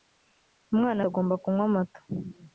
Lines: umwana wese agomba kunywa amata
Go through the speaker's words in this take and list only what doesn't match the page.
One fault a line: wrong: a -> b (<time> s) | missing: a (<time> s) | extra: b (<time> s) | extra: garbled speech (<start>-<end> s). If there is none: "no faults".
missing: wese (1.0 s)